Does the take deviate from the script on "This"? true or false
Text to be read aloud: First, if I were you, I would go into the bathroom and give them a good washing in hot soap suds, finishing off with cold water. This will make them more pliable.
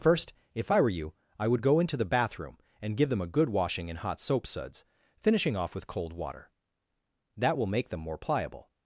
true